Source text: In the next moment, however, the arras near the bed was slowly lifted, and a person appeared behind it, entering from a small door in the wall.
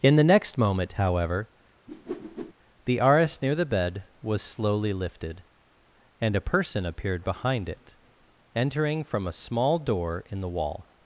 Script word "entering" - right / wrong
right